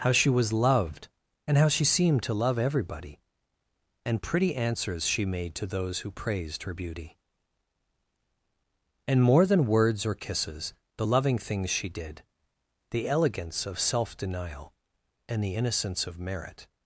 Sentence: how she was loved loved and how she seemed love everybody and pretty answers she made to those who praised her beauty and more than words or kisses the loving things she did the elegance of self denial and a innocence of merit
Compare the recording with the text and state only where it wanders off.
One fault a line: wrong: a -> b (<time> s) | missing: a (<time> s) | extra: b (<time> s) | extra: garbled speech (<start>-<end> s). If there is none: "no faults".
missing: loved (1.1 s)
extra: to (2.2 s)
wrong: a -> the (15.4 s)